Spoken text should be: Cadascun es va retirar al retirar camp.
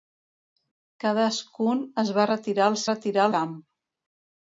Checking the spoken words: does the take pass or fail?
pass